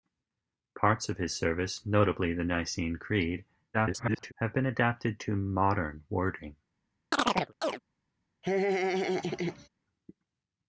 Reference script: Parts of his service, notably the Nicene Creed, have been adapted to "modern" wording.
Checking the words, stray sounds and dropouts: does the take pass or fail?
fail